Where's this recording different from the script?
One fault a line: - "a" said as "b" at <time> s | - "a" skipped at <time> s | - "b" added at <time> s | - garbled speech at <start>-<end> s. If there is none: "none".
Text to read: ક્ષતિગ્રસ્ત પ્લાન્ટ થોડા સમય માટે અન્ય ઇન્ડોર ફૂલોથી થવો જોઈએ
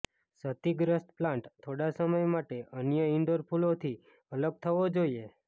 - "અલગ" added at 4.3 s